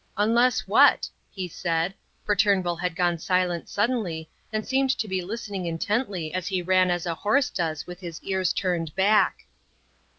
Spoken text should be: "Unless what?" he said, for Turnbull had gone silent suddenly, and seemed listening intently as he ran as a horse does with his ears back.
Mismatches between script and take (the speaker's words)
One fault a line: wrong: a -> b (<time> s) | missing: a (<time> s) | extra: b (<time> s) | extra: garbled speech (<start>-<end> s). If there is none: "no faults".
extra: to be (5.0 s)
extra: turned (8.5 s)